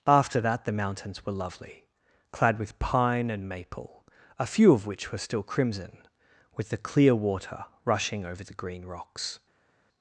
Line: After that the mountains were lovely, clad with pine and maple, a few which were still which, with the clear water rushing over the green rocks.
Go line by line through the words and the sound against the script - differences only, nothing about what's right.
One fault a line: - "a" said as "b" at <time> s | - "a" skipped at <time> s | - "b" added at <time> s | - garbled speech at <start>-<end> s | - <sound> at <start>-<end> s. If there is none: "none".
- "of" added at 4.7 s
- "which" said as "crimson" at 5.4 s